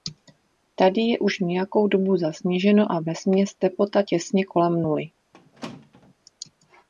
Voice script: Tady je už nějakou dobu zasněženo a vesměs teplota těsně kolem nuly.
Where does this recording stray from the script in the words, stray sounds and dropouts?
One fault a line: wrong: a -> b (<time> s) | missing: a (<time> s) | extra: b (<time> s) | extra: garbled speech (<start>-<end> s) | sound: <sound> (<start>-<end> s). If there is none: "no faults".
sound: squeak (5.3-6.1 s)